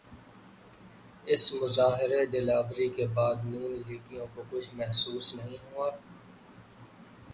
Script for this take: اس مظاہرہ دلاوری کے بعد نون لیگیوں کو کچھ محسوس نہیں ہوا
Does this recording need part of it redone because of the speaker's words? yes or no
no